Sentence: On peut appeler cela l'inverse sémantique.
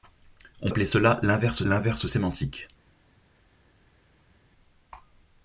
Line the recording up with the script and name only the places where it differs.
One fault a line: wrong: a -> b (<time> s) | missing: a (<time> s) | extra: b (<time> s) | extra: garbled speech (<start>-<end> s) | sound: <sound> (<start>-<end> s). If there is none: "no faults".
missing: peut (0.7 s)
extra: l'inverse (1.6 s)